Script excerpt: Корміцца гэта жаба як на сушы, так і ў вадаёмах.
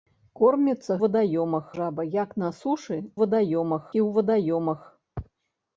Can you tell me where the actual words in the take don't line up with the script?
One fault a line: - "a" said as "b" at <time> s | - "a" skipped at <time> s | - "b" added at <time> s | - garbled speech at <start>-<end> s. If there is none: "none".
- "гэта" said as "вадаёмах" at 1.0 s
- "так" said as "вадаёмах" at 3.2 s